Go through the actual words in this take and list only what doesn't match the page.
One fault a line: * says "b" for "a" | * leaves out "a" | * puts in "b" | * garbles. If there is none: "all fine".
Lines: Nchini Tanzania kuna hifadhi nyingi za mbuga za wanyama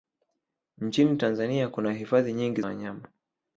* leaves out "za mbuga za"